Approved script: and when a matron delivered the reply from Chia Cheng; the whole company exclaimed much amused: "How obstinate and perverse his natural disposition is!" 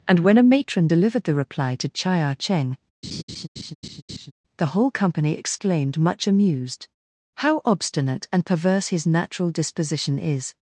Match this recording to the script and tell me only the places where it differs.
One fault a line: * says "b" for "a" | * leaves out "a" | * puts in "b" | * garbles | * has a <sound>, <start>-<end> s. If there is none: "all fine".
* says "to" for "from"
* has a laugh, 3.0-4.3 s